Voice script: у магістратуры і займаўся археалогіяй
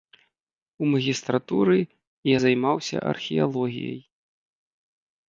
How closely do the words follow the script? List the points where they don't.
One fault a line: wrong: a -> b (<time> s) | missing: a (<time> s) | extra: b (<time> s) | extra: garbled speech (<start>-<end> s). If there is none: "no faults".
no faults